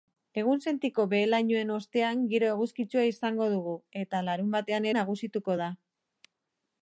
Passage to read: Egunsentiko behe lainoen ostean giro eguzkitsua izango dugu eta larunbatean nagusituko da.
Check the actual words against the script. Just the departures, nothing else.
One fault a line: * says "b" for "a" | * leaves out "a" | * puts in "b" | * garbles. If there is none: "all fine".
all fine